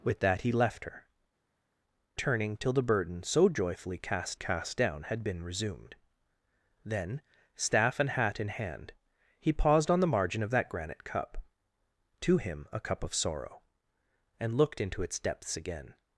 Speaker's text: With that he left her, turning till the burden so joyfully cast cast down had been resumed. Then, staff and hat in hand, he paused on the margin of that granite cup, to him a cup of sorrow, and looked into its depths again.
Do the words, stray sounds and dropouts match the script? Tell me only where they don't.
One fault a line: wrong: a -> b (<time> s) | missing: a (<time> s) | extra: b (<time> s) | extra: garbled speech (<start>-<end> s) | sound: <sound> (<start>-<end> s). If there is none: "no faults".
no faults